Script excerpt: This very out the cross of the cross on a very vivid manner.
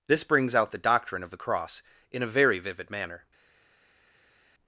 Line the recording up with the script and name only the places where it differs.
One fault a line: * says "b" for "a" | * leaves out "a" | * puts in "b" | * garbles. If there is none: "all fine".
* says "brings" for "very"
* says "doctrine" for "cross"
* says "in" for "on"